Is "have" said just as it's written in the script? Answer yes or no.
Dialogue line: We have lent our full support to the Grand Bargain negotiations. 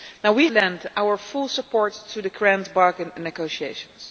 no